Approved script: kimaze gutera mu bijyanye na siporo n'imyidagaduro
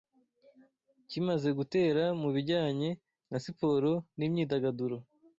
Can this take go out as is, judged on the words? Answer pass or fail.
pass